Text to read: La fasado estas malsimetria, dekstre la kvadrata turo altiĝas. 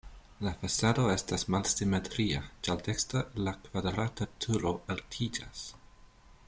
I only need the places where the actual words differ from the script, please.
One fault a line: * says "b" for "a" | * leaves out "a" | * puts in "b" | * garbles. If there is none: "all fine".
* puts in "ĉar"